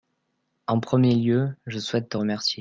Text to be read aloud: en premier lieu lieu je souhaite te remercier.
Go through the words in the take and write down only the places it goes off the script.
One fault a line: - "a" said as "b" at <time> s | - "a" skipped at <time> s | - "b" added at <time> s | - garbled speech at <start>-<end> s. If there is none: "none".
- "lieu" skipped at 1.6 s